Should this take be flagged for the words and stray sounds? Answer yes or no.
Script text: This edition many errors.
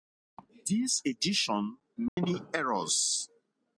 yes